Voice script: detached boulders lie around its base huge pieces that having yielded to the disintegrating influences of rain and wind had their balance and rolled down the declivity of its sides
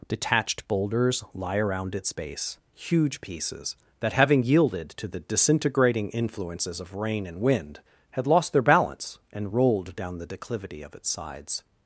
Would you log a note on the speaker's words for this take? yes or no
yes